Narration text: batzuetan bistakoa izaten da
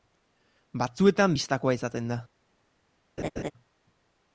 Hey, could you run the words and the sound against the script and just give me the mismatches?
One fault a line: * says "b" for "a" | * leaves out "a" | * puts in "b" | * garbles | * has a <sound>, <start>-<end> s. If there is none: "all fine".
* has a laugh, 3.2-3.5 s